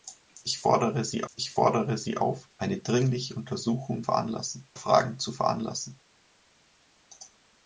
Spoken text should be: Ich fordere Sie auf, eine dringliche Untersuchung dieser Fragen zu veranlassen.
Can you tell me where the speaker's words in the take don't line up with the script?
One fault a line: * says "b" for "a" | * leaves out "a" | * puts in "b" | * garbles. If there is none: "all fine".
* puts in "ich fordere Sie"
* says "veranlassen" for "dieser"